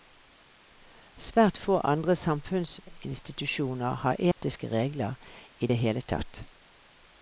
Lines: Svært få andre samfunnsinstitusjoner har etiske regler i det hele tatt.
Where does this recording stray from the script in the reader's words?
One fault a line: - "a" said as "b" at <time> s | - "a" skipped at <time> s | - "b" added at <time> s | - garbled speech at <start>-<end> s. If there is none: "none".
none